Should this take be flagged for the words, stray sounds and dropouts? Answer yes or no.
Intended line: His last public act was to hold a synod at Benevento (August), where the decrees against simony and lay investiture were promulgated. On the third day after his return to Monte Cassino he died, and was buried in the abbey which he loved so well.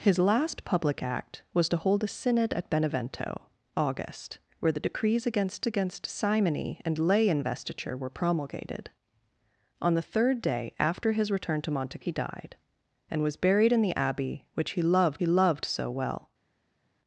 yes